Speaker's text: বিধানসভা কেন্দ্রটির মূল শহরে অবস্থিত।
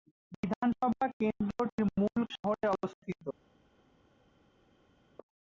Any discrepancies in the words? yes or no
no